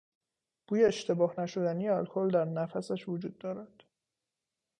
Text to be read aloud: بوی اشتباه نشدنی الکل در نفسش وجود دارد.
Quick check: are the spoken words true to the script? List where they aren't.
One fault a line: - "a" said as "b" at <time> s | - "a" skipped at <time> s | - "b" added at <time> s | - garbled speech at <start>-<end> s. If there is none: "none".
none